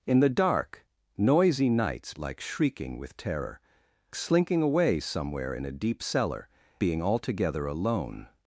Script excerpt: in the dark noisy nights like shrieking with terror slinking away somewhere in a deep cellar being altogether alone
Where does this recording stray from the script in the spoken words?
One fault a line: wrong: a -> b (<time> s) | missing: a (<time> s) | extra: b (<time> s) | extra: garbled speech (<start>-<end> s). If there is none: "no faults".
no faults